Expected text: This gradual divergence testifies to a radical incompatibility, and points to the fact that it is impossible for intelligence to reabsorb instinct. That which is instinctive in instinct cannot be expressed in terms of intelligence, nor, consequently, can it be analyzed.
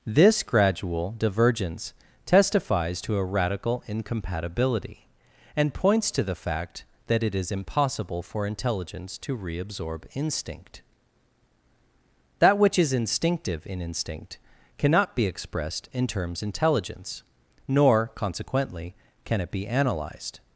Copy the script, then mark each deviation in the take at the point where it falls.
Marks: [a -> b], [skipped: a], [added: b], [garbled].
This gradual divergence testifies to a radical incompatibility, and points to the fact that it is impossible for intelligence to reabsorb instinct. That which is instinctive in instinct cannot be expressed in terms [skipped: of] intelligence, nor, consequently, can it be analyzed.